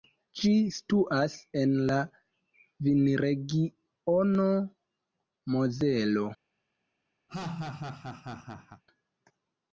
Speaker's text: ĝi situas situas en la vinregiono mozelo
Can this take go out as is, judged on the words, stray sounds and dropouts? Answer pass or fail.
fail